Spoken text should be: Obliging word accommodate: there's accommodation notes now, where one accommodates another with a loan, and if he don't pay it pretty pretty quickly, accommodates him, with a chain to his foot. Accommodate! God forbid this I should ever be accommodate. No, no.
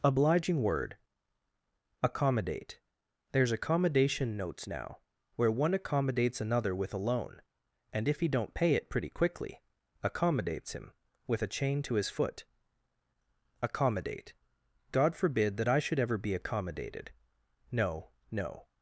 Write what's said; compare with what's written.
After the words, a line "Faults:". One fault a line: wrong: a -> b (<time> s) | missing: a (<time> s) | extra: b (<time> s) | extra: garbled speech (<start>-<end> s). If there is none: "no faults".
Obliging word accommodate: there's accommodation notes now, where one accommodates another with a loan, and if he don't pay it pretty quickly, accommodates him, with a chain to his foot. Accommodate! God forbid that I should ever be accommodated. No, no.
Faults:
missing: pretty (9.1 s)
wrong: this -> that (15.6 s)
wrong: accommodate -> accommodated (16.4 s)